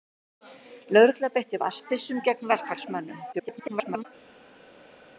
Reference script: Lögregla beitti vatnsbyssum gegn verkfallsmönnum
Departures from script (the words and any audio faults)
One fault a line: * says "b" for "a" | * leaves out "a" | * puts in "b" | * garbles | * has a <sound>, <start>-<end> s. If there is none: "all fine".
* garbles